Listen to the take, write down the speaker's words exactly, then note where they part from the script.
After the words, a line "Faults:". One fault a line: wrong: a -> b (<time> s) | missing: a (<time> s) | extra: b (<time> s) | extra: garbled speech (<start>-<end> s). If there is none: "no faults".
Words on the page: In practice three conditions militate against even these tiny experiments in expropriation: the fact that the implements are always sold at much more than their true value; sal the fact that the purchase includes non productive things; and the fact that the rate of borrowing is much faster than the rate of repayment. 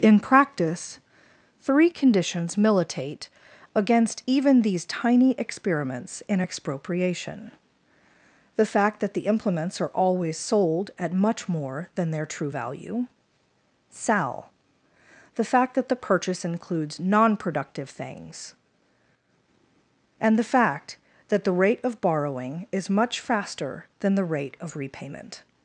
In practice three conditions militate against even these tiny experiments in expropriation: the fact that the implements are always sold at much more than their true value; sal the fact that the purchase includes non productive things; and the fact that the rate of borrowing is much faster than the rate of repayment.
Faults:
no faults